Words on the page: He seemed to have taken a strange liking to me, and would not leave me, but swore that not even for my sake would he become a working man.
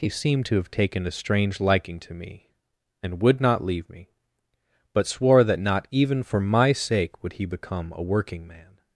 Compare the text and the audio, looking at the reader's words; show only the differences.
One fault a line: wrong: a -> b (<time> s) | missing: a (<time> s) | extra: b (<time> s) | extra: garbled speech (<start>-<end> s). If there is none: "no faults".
no faults